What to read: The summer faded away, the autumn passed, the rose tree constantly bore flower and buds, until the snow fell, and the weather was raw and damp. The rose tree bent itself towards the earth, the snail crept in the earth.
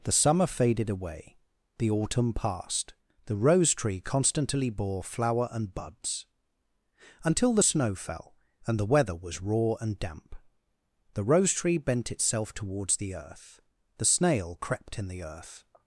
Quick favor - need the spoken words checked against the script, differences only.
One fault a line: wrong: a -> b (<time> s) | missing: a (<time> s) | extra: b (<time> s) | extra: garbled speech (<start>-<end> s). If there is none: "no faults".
no faults